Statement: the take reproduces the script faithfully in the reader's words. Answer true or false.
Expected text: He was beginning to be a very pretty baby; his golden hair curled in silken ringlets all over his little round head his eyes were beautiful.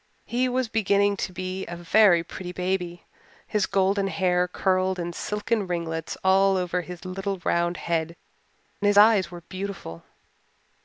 true